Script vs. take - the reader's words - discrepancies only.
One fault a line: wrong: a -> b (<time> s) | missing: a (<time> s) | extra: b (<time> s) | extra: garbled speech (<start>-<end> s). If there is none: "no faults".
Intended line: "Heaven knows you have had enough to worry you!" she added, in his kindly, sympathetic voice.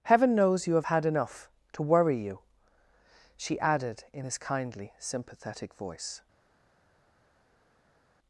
no faults